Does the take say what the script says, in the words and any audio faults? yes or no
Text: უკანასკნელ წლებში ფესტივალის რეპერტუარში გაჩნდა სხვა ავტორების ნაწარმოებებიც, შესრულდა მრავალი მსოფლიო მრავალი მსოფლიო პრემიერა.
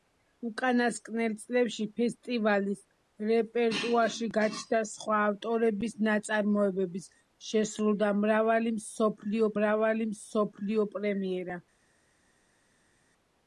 yes